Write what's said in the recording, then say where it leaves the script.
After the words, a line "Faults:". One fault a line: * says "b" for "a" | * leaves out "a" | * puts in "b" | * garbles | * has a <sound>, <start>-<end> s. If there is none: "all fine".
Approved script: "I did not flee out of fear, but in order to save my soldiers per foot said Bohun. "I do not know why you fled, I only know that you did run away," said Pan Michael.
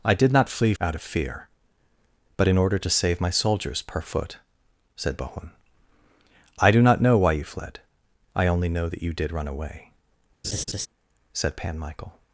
"I did not flee out of fear, but in order to save my soldiers per foot said Bohun. "I do not know why you fled, I only know that you did run away," said Pan Michael.
Faults:
* has a laugh, 10.4-10.9 s